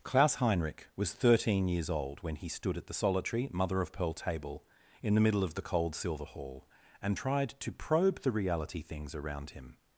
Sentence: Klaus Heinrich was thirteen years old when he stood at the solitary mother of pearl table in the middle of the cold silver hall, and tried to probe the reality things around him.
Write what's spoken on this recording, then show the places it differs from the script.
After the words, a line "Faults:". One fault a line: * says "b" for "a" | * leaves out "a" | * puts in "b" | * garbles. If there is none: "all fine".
Klaus Heinrich was thirteen years old when he stood at the solitary mother of pearl table in the middle of the cold silver hall, and tried to probe the reality things around him.
Faults:
all fine